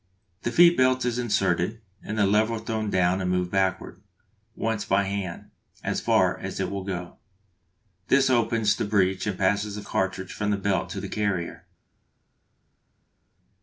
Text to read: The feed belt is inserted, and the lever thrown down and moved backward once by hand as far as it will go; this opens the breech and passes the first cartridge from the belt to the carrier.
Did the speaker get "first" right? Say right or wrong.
wrong